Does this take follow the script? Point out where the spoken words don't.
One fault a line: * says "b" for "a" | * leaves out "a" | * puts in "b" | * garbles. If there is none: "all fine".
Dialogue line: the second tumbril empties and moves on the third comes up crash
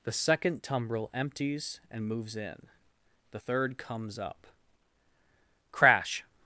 * says "in" for "on"